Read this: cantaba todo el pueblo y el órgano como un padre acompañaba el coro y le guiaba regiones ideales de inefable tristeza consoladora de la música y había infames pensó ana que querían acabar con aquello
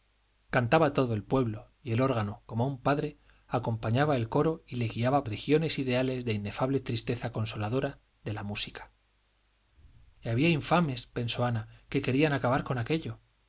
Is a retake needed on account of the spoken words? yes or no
no